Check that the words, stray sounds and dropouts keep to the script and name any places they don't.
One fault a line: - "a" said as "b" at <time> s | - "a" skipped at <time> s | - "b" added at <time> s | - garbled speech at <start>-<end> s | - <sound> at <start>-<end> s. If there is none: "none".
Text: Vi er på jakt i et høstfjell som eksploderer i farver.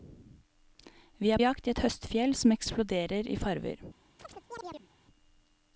- "på" skipped at 1.4 s
- chirp at 4.2-4.9 s